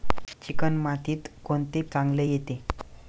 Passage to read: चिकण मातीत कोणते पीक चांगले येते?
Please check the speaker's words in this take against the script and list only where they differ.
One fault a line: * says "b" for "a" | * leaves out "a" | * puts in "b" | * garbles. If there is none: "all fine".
* leaves out "पीक"